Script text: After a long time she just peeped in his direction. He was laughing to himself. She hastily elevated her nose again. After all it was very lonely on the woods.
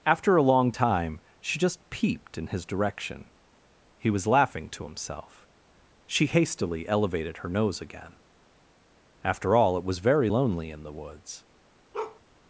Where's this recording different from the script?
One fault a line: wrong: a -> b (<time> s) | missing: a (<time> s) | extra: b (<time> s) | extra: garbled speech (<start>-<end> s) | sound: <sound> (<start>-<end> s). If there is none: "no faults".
wrong: on -> in (10.7 s)
sound: bark (11.9-12.2 s)